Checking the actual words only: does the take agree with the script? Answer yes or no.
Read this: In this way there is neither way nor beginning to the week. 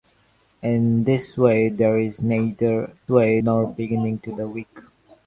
yes